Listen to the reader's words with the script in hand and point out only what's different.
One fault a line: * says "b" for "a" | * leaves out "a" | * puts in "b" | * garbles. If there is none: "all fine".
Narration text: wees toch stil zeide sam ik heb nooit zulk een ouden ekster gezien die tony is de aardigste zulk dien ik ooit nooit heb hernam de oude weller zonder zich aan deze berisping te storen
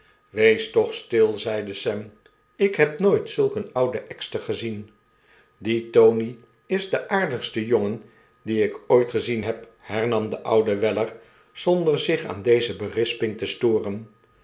* says "jongen" for "zulk"
* says "gezien" for "nooit"